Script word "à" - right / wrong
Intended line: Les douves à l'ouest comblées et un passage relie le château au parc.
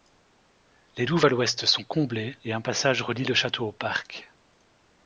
right